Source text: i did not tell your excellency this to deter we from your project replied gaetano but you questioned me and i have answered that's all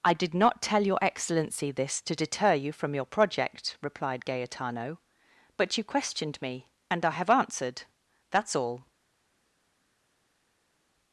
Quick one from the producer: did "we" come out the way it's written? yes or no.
no